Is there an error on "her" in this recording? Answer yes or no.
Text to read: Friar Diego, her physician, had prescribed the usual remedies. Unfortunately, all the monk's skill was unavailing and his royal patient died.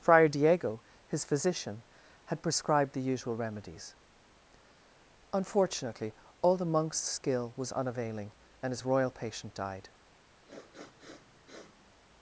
yes